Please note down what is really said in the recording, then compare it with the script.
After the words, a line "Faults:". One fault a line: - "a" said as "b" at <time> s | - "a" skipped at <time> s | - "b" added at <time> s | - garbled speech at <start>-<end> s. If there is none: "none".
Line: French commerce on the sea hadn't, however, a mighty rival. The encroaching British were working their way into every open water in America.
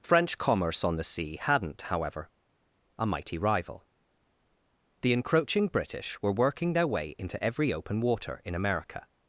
French commerce on the sea hadn't, however, a mighty rival. The encroaching British were working their way into every open water in America.
Faults:
none